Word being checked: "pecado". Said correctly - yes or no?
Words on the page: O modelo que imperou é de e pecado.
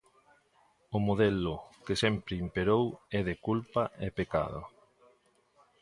yes